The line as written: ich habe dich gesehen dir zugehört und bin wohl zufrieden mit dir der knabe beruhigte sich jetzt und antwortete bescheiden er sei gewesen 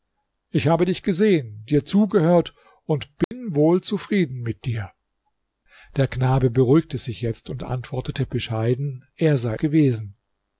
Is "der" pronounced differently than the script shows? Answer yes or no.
no